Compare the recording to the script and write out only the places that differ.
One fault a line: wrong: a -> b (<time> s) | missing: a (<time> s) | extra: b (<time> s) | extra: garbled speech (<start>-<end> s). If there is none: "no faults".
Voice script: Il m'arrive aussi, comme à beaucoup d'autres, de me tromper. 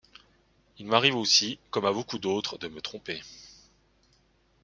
no faults